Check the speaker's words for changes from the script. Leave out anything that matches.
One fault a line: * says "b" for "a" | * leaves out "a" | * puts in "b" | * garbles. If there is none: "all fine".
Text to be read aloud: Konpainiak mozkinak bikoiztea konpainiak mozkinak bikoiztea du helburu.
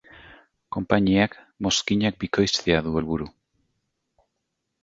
* leaves out "konpainiak mozkinak bikoiztea"